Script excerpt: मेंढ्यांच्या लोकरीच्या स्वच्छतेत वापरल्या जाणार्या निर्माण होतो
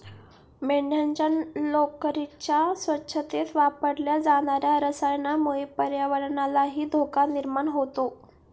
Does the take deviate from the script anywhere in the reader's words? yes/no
yes